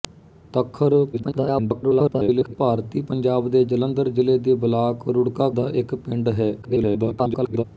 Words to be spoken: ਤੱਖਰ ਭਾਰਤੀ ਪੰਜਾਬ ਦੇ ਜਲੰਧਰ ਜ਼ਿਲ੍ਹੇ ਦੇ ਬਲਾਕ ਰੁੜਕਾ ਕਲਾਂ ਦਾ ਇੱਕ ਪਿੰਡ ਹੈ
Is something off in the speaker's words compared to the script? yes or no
yes